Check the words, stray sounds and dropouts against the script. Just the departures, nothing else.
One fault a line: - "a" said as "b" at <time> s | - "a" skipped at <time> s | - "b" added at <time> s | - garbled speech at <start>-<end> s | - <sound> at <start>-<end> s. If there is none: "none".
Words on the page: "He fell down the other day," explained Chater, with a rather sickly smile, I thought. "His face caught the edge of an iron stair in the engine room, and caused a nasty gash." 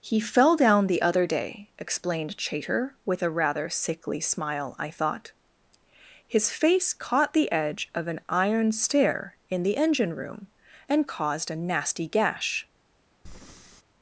- breath at 13.3-13.8 s